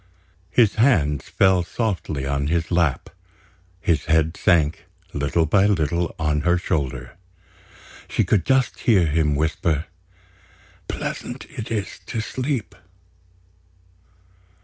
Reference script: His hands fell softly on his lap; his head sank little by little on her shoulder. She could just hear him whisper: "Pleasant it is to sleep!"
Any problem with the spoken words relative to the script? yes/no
no